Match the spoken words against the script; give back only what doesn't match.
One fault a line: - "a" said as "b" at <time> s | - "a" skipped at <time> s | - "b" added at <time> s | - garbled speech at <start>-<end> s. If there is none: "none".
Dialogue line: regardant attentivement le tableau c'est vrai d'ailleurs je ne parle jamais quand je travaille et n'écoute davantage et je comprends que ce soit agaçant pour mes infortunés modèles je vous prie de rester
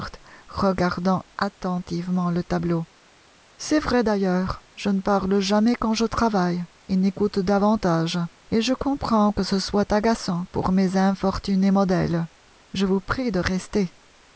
none